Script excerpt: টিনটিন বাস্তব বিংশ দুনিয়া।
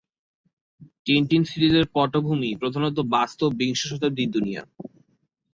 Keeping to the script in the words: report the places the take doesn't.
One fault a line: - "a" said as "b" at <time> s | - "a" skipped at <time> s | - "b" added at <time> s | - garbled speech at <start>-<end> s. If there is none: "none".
- "সিরিজের পটভূমি প্রধানত" added at 1.4 s
- "শতাব্দীর" added at 3.9 s